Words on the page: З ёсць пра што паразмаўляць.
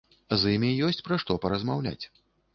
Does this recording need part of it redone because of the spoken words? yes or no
yes